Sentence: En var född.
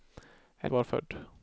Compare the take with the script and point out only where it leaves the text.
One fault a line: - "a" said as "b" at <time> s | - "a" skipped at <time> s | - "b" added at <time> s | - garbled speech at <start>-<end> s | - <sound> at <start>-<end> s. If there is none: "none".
none